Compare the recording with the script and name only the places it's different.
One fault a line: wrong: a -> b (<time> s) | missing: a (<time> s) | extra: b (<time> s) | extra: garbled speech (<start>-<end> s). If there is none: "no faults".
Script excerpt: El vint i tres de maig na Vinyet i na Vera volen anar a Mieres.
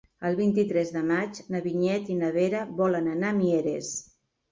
no faults